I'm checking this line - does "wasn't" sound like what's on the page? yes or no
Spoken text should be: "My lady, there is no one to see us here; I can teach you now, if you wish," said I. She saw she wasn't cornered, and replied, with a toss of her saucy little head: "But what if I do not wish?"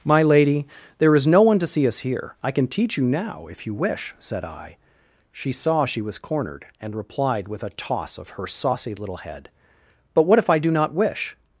no